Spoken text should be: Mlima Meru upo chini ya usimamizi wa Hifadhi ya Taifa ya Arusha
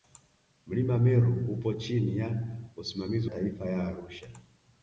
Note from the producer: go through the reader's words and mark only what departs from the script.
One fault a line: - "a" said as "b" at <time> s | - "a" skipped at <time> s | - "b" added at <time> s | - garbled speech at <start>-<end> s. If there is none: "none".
- "wa Hifadhi ya" skipped at 3.3 s